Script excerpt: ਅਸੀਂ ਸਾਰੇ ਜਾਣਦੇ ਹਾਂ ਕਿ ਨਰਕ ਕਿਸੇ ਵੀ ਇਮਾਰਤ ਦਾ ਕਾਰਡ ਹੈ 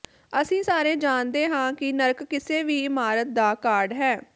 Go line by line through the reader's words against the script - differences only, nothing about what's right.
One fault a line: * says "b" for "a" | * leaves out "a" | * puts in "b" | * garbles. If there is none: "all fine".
all fine